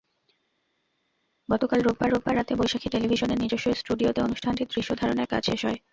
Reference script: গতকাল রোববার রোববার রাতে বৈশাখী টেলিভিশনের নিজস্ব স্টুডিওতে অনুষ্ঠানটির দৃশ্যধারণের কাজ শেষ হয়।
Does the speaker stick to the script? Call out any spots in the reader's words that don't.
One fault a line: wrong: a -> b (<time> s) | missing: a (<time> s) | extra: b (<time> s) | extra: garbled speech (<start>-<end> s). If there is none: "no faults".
no faults